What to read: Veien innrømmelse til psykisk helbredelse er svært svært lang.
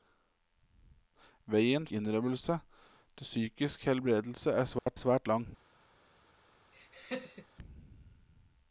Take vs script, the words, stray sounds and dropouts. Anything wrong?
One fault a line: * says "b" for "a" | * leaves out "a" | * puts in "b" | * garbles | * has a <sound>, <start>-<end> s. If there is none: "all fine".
* has a dropout, 4.8-4.9 s
* has a laugh, 6.7-7.5 s